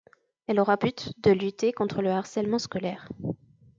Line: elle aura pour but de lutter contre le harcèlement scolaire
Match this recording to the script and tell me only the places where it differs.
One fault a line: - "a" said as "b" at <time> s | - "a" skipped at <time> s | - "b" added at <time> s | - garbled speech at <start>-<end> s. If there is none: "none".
- "pour" skipped at 0.8 s